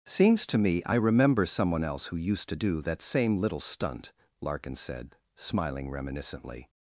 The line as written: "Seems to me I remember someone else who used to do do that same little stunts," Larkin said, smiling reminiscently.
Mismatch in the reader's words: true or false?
true